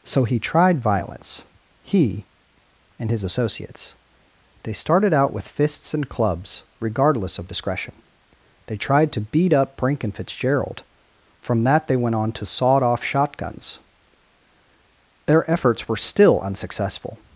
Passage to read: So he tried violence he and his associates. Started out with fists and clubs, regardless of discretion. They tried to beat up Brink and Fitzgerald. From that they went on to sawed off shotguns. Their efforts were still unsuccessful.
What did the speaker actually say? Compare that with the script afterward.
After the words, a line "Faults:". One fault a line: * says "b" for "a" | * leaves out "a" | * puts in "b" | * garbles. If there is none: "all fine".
So he tried violence he and his associates. They started out with fists and clubs, regardless of discretion. They tried to beat up Brink and Fitzgerald. From that they went on to sawed off shotguns. Their efforts were still unsuccessful.
Faults:
* puts in "They"